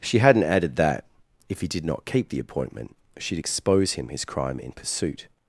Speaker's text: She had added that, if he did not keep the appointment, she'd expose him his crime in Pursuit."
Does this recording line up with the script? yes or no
no